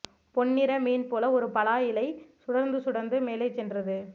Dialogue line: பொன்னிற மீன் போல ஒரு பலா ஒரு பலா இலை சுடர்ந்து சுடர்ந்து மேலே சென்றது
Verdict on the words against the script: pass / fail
fail